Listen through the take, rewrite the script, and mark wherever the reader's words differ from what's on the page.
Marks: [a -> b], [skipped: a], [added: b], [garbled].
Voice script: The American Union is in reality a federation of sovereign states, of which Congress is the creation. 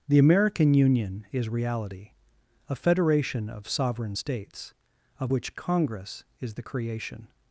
The American Union is [skipped: in] reality a federation of sovereign states, of which Congress is the creation.